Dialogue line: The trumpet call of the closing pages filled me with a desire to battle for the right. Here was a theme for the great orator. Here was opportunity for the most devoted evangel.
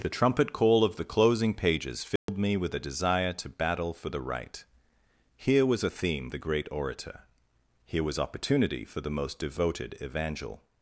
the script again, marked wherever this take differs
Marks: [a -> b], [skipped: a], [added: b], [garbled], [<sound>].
The trumpet call of the closing pages filled [dropout] me with a desire to battle for the right. Here was a theme [skipped: for] the great orator. Here was opportunity for the most devoted evangel.